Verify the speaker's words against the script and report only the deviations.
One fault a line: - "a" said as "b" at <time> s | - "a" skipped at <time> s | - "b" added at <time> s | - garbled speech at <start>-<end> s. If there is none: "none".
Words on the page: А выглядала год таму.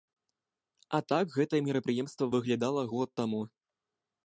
- "так гэтае мерапрыемства" added at 1.1 s